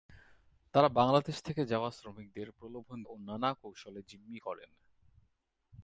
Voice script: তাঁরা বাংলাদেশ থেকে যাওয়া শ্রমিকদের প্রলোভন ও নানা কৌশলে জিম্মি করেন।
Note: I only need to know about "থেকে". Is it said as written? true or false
true